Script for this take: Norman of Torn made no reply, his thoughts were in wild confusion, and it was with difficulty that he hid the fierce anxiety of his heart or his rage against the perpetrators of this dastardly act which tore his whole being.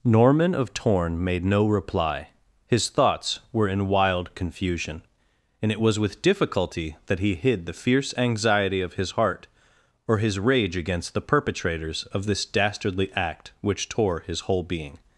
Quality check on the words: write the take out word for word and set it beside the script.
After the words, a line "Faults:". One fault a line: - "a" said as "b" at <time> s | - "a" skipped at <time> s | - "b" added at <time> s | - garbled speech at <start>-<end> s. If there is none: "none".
Norman of Torn made no reply, his thoughts were in wild confusion, and it was with difficulty that he hid the fierce anxiety of his heart or his rage against the perpetrators of this dastardly act which tore his whole being.
Faults:
none